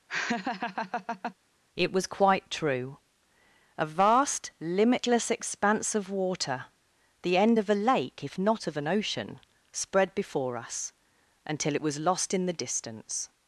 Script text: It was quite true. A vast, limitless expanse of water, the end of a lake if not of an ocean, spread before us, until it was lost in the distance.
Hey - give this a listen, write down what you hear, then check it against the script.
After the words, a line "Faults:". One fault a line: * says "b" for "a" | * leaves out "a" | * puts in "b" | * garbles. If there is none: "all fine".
It was quite true. A vast, limitless expanse of water, the end of a lake if not of an ocean, spread before us, until it was lost in the distance.
Faults:
all fine